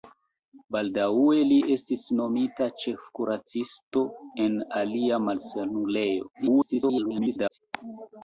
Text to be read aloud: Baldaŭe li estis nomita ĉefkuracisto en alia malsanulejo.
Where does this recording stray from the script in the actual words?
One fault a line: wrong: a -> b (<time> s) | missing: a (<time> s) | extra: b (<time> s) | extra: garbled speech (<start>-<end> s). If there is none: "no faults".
extra: garbled speech (6.3-7.6 s)